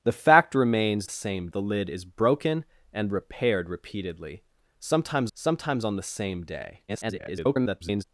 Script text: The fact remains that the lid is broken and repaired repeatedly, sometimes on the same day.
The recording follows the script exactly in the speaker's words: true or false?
false